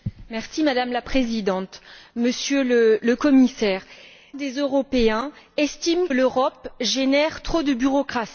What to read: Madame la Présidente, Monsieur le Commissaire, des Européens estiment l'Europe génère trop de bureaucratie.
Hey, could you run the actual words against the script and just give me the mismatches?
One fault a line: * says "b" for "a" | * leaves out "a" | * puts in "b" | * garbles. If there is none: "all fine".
all fine